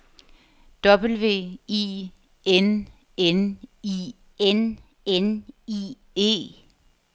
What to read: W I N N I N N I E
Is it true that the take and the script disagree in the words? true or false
false